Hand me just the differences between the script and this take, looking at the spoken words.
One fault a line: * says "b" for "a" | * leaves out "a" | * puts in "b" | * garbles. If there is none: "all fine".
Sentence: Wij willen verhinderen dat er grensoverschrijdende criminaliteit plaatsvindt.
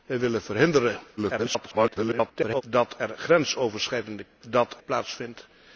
* garbles
* says "dat" for "criminaliteit"